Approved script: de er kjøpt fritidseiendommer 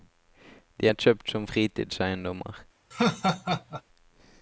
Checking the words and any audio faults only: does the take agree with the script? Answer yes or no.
no